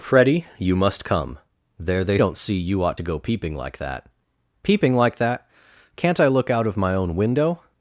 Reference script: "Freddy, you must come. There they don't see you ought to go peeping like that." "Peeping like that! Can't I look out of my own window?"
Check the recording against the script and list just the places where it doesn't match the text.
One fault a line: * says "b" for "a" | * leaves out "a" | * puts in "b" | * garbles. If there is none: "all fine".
all fine